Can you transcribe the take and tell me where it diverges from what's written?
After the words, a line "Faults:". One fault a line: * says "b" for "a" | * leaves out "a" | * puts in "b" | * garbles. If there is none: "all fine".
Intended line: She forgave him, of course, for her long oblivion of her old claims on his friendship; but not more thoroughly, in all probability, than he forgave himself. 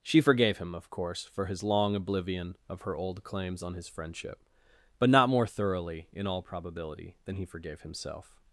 She forgave him, of course, for his long oblivion of her old claims on his friendship; but not more thoroughly, in all probability, than he forgave himself.
Faults:
* says "his" for "her"